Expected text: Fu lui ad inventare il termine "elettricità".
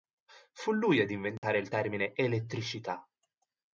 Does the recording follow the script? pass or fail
pass